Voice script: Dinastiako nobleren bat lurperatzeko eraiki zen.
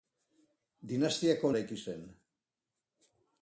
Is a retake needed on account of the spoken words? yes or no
yes